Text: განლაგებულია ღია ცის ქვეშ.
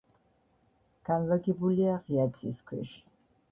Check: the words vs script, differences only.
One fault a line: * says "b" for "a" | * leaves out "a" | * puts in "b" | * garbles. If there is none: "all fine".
all fine